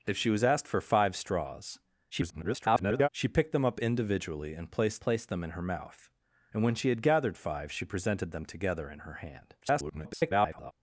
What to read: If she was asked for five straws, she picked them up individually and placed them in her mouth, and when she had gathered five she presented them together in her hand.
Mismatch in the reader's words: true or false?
true